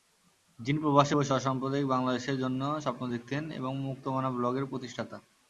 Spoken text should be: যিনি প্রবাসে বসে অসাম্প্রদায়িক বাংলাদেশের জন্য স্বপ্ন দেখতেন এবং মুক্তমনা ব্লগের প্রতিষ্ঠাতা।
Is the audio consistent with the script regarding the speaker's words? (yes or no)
yes